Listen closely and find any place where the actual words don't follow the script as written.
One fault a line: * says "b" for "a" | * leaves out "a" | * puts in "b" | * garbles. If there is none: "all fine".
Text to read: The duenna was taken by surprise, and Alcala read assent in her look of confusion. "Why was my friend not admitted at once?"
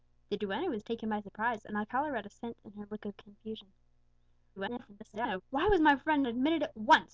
* garbles
* leaves out "not"